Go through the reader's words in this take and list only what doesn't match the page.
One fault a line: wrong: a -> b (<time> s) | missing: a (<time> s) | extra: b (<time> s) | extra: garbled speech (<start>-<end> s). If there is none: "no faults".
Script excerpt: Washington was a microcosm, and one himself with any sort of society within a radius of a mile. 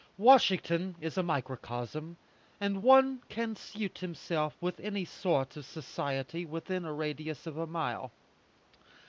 wrong: was -> is (1.0 s)
extra: can suit (3.3 s)